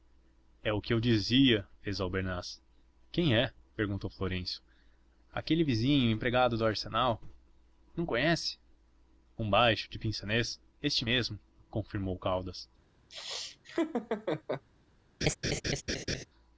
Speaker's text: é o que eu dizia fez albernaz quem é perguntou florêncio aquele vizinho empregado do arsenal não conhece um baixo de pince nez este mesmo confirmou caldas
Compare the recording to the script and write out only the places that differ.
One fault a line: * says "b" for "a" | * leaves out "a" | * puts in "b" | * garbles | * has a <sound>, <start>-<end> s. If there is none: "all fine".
* has a laugh, 13.1-14.6 s
* has a laugh, 15.2-16.2 s